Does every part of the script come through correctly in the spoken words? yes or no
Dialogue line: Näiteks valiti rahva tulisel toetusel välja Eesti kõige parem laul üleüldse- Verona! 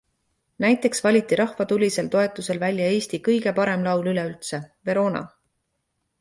yes